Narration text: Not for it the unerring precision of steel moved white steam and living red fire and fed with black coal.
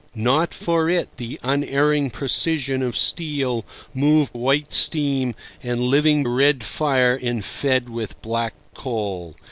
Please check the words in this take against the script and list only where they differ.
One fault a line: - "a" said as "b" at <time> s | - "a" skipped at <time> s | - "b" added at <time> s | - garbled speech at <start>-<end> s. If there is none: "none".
none